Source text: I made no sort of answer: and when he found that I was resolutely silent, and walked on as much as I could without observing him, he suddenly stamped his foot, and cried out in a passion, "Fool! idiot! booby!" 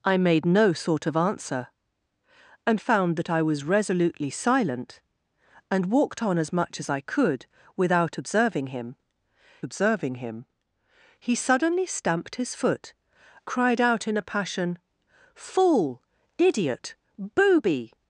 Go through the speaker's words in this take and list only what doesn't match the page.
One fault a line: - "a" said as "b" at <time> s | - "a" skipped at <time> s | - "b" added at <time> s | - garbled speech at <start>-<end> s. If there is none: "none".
- "when he" skipped at 2.8 s
- "observing him" added at 9.6 s
- "and" skipped at 12.9 s